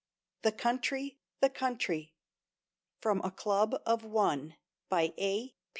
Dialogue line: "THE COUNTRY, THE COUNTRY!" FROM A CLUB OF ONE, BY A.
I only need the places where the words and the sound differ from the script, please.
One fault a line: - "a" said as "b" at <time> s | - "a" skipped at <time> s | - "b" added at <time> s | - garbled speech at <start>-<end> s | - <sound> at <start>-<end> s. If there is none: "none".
none